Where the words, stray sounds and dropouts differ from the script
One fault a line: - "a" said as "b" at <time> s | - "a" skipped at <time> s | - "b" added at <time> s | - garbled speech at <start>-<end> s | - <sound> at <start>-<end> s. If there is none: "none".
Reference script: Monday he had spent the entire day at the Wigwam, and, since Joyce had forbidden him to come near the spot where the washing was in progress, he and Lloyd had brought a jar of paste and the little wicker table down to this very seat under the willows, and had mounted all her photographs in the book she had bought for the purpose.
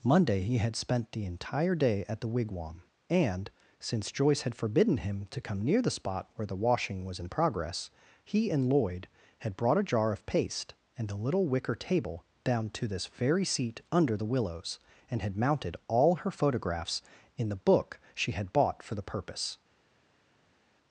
- "the" said as "a" at 11.1 s